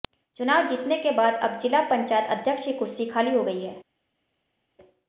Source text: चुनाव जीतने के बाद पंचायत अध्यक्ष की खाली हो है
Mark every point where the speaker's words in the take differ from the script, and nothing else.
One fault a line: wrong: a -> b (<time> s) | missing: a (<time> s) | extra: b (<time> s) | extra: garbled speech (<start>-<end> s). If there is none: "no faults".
extra: अब जिला (1.3 s)
extra: कुर्सी (2.7 s)
extra: गई (3.4 s)